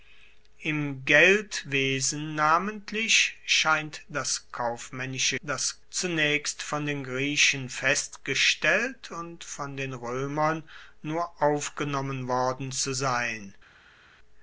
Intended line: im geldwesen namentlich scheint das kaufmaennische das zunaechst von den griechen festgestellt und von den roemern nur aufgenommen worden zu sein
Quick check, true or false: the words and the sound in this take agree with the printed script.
true